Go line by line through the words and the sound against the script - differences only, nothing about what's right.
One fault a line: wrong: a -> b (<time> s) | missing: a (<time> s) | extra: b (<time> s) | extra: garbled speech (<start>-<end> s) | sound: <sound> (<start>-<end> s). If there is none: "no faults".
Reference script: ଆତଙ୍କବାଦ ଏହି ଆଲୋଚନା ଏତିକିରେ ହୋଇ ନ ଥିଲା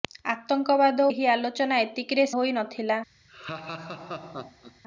sound: laugh (3.3-4.8 s)